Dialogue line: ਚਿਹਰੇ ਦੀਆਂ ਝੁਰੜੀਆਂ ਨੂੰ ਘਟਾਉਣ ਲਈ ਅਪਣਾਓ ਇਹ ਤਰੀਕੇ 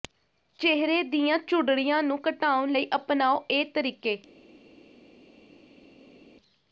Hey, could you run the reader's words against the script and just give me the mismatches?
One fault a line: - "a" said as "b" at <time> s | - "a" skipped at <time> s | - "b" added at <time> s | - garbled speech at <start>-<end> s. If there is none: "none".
none